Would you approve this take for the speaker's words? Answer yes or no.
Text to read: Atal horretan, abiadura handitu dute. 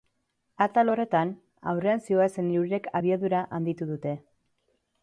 no